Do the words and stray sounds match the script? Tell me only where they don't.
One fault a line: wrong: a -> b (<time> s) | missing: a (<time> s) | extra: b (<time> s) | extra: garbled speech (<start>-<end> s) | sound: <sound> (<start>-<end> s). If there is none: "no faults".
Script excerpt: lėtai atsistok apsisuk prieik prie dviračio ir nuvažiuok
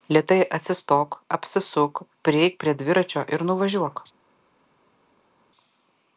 no faults